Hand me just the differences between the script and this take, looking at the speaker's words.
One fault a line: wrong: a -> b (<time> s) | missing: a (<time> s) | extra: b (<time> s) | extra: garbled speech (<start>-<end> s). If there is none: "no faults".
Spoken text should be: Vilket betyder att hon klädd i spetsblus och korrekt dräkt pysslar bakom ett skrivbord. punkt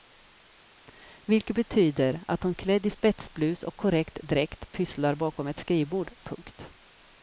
no faults